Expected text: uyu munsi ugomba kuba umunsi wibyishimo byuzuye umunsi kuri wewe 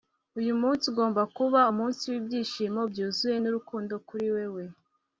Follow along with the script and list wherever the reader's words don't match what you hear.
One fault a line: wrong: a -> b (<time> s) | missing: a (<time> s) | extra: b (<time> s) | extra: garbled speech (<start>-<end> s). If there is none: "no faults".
wrong: umunsi -> nurukundo (3.4 s)